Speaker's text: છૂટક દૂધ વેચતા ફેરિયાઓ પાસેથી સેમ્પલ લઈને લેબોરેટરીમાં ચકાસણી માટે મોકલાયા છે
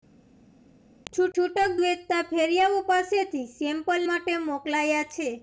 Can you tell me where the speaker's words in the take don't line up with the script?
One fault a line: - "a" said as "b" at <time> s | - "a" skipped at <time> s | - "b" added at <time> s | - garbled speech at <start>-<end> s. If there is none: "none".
- "દૂધ" skipped at 1.7 s
- "લઈને લેબોરેટરીમાં ચકાસણી" skipped at 4.1 s